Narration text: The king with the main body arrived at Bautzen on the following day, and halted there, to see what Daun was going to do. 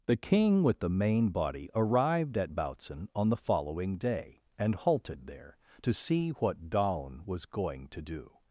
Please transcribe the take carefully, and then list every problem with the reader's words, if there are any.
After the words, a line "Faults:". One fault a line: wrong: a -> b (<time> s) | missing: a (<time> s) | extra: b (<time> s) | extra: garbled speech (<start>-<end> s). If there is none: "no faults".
The king with the main body arrived at Bautzen on the following day, and halted there, to see what Daun was going to do.
Faults:
no faults